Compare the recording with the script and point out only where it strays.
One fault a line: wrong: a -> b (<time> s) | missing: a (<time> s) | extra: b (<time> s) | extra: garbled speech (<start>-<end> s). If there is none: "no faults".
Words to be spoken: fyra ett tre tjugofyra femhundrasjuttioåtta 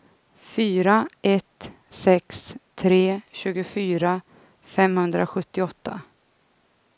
extra: sex (1.9 s)